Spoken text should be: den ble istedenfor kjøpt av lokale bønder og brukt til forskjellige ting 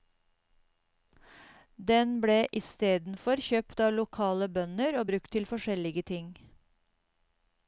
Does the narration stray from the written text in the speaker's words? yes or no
no